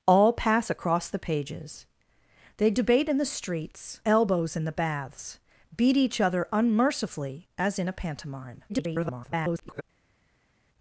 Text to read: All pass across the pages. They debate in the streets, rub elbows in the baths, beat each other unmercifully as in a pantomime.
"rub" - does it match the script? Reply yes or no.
no